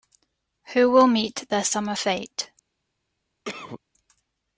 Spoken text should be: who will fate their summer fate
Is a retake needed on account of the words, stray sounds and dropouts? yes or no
yes